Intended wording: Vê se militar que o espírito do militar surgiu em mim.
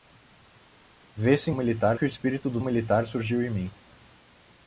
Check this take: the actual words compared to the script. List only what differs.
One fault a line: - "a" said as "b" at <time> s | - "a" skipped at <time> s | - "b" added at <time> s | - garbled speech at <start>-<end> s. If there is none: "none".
none